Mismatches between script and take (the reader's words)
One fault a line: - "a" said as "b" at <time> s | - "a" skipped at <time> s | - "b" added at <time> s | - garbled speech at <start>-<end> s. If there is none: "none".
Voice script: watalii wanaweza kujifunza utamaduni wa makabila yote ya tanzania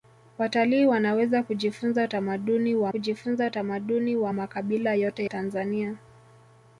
- "kujifunza utamaduni wa" added at 2.9 s
- "ya" skipped at 5.2 s